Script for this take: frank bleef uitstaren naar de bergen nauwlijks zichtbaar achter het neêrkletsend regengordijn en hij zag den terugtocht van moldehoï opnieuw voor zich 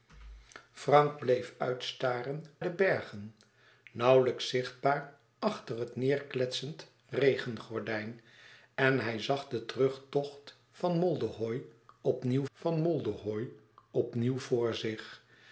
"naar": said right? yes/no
no